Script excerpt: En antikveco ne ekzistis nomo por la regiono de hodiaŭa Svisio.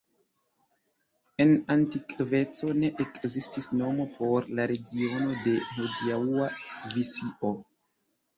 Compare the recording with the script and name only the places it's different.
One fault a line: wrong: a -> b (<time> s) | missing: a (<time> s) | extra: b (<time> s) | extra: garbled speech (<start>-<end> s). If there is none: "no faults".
no faults